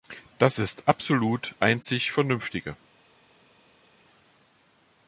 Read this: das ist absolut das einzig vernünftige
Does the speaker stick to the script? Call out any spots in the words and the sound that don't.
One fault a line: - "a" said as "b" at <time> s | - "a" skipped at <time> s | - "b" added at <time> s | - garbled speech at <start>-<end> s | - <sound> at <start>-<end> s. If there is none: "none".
- "das" skipped at 1.5 s